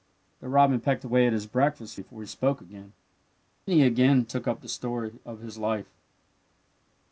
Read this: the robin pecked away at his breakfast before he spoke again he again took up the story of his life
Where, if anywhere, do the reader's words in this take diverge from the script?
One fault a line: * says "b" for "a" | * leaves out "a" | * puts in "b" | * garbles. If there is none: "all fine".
all fine